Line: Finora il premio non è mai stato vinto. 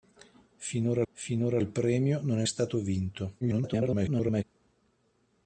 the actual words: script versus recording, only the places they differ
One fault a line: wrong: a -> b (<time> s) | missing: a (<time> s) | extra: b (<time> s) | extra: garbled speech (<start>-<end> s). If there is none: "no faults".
extra: finora (1.1 s)
missing: mai (2.5 s)
extra: garbled speech (3.4-4.4 s)